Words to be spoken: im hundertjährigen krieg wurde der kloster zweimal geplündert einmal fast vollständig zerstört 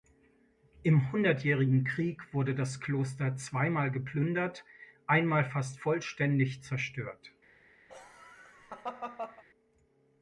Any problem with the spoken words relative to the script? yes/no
yes